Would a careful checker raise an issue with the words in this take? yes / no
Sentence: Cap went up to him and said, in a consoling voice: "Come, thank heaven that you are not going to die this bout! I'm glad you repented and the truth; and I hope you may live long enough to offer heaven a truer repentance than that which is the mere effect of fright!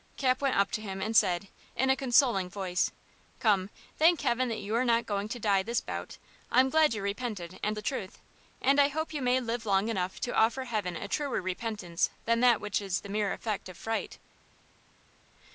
no